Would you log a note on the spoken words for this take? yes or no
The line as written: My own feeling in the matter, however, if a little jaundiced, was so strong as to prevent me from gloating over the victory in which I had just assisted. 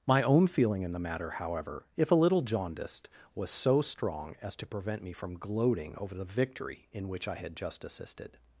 no